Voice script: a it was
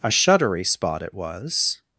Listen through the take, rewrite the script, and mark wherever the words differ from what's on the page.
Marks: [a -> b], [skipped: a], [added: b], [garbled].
a [added: shuddery spot] it was